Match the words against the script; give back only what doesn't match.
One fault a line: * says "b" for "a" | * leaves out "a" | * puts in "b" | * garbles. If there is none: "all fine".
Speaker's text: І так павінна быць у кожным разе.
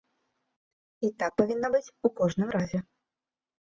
all fine